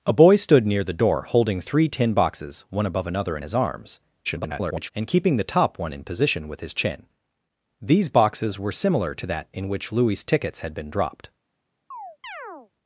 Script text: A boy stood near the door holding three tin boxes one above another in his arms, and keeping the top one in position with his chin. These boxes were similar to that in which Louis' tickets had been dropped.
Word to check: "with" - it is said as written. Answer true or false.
true